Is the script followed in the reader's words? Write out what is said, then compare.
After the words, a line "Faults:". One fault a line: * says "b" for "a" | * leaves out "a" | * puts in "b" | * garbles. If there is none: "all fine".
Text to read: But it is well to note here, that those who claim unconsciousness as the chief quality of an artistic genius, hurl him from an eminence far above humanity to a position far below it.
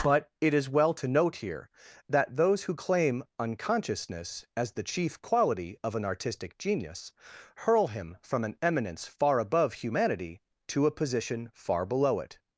But it is well to note here, that those who claim unconsciousness as the chief quality of an artistic genius, hurl him from an eminence far above humanity to a position far below it.
Faults:
all fine